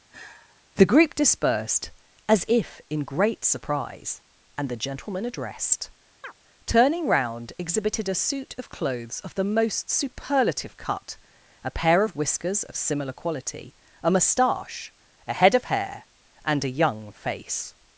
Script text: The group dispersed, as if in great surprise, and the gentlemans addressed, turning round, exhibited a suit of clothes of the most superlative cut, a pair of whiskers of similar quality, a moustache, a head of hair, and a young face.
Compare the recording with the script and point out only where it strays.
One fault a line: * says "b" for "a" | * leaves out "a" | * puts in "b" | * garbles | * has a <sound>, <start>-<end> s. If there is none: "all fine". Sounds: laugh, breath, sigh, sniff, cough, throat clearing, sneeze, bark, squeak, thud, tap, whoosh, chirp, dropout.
* has a sigh, 0.1-0.6 s
* says "gentleman" for "gentlemans"
* has a chirp, 6.2-6.3 s